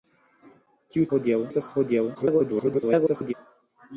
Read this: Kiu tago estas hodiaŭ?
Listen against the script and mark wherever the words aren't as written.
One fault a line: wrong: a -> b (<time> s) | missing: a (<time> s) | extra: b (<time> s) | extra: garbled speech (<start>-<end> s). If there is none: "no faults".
wrong: tago -> hodiaŭ (1.1 s)
extra: garbled speech (2.1-3.3 s)